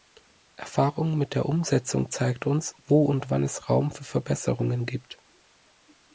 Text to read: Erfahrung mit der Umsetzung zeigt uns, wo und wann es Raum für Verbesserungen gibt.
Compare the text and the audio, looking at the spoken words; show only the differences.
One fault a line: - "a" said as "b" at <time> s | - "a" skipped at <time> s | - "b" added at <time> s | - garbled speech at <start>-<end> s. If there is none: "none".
none